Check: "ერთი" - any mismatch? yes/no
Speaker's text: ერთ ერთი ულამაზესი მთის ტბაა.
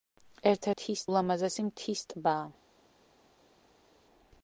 yes